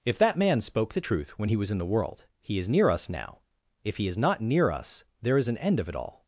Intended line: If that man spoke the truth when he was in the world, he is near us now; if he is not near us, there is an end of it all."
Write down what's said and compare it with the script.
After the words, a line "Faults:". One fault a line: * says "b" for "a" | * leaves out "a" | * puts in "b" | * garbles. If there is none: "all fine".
If that man spoke the truth when he was in the world, he is near us now; if he is not near us, there is an end of it all."
Faults:
all fine